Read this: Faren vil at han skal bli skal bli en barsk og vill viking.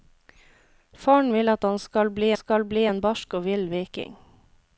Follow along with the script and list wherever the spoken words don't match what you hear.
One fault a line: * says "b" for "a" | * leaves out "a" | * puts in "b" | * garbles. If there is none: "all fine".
all fine